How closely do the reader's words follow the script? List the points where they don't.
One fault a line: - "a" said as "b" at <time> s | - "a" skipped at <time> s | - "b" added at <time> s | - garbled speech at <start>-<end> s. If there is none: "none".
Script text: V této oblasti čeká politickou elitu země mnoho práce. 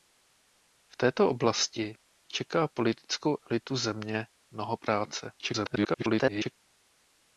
- garbled speech at 5.4-6.6 s